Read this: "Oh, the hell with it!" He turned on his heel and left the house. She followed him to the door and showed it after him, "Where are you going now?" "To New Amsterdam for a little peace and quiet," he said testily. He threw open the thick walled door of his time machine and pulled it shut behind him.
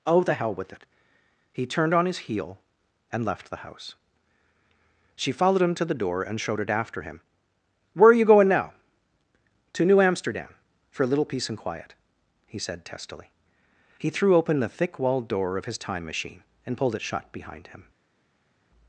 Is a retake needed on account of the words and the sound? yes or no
no